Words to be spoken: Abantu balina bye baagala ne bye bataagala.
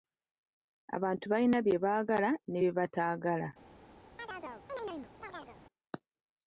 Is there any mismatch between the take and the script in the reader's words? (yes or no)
no